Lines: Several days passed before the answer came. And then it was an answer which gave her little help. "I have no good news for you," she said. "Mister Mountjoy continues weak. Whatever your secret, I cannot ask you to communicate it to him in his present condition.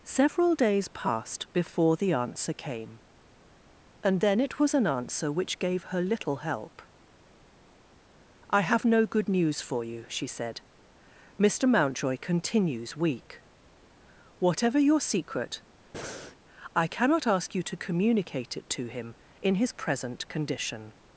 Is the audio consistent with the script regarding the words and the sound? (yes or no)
no